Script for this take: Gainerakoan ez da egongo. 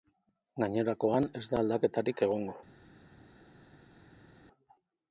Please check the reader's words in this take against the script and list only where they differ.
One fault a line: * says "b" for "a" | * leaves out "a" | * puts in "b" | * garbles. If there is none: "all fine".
* puts in "aldaketarik"